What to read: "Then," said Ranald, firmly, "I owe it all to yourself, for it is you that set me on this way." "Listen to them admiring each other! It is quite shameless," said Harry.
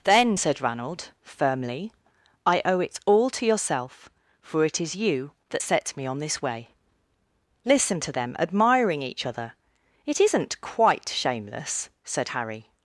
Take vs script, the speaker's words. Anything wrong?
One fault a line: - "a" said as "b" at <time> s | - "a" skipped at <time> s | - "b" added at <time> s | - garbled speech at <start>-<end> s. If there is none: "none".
- "is" said as "isn't" at 10.2 s